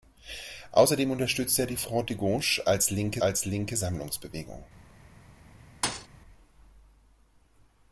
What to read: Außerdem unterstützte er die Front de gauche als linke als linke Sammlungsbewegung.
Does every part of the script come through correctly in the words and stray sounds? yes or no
no